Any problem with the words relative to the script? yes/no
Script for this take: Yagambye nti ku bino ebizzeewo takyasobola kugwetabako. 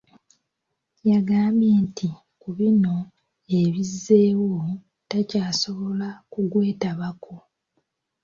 no